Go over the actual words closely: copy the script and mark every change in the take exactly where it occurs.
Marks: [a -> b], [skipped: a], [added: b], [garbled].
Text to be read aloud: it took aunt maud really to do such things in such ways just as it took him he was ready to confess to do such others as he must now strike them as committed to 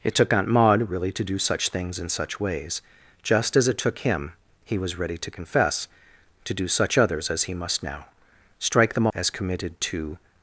it took aunt maud really to do such things in such ways just as it took him he was ready to confess to do such others as he must now strike them as committed to